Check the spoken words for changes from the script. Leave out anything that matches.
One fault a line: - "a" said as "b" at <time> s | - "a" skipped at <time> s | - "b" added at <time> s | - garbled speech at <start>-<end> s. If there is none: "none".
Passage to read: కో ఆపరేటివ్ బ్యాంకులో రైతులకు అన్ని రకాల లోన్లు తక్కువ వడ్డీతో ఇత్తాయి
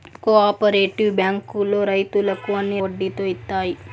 - "రకాల లోన్లు తక్కువ" skipped at 2.8 s